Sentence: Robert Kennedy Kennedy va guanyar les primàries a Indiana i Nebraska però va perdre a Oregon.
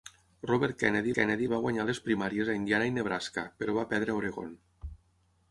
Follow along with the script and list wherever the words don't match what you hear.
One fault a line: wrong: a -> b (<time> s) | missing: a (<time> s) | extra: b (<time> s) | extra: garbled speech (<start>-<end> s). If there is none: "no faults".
no faults